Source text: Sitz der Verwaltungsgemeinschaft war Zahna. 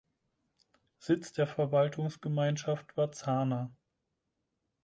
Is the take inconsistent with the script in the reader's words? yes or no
no